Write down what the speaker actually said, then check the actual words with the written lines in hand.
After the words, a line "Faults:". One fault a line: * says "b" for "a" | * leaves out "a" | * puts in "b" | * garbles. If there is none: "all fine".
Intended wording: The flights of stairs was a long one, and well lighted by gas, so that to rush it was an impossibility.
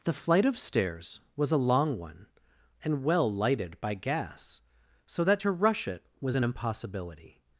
The flight of stairs was a long one, and well lighted by gas, so that to rush it was an impossibility.
Faults:
* says "flight" for "flights"